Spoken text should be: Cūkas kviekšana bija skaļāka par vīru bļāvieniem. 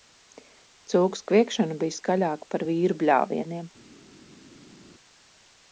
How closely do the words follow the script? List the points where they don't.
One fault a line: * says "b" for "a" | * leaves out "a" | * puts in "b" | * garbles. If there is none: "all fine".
all fine